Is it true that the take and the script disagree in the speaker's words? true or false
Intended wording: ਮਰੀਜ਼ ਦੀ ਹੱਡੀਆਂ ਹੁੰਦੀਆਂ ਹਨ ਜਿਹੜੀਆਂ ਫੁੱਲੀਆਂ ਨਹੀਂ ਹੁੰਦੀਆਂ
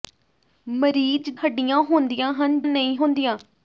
true